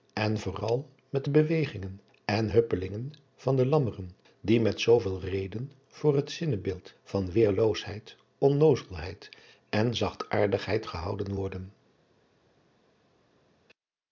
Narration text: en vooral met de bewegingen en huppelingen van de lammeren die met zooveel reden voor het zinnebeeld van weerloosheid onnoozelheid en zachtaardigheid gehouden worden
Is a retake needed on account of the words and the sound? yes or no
no